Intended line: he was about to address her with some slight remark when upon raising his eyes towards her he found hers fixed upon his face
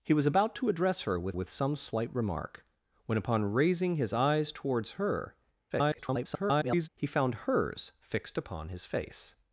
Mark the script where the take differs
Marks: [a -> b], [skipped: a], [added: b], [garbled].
he was about to address her with [added: with] some slight remark when upon raising his eyes towards her [garbled] he found hers fixed upon his face